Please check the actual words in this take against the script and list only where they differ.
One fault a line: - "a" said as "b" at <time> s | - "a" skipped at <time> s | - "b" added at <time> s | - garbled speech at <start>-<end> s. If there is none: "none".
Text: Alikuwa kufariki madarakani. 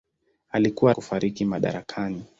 none